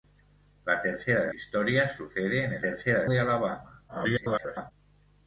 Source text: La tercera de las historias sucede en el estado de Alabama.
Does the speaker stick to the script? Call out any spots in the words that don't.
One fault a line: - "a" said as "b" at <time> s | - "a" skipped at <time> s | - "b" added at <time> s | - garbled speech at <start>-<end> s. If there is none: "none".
- "las" skipped at 1.3 s
- "estado" said as "tercera" at 2.6 s
- garbled speech at 3.9-4.7 s